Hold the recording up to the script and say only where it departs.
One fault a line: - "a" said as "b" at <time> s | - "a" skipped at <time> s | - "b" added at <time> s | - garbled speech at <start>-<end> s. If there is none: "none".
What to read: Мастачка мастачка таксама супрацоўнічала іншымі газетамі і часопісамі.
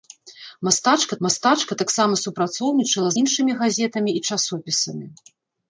none